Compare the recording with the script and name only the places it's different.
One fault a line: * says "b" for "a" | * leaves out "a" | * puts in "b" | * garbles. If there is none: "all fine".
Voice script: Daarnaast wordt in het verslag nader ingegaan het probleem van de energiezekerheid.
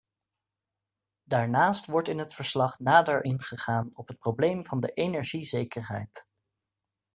* puts in "op"